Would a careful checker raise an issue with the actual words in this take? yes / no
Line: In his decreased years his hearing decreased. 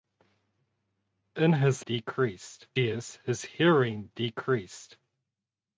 no